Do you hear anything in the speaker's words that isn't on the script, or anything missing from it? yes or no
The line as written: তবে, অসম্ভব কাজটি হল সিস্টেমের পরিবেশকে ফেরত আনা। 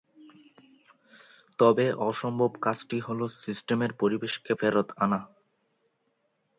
no